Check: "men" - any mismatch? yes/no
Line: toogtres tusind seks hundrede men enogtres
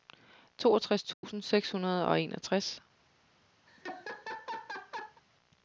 yes